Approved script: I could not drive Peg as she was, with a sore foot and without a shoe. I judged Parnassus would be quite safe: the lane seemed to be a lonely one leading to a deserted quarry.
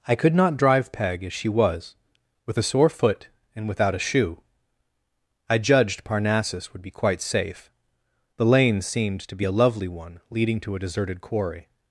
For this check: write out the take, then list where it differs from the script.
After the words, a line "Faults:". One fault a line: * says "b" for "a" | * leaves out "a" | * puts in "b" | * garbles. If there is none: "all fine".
I could not drive Peg as she was, with a sore foot and without a shoe. I judged Parnassus would be quite safe: the lane seemed to be a lovely one leading to a deserted quarry.
Faults:
* says "lovely" for "lonely"